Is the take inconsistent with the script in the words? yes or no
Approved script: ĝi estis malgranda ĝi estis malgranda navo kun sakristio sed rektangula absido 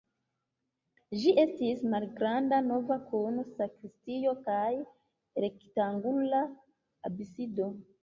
yes